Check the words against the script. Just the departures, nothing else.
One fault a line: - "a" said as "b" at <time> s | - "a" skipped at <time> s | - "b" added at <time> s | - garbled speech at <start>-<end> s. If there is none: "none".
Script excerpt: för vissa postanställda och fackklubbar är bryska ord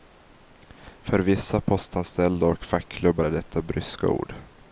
- "detta" added at 3.3 s